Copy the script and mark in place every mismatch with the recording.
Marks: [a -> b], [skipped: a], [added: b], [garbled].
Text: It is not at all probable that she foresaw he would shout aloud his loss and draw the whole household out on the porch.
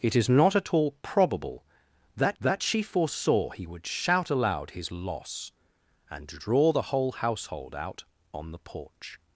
It is not at all probable that [added: that] she foresaw he would shout aloud his loss and draw the whole household out on the porch.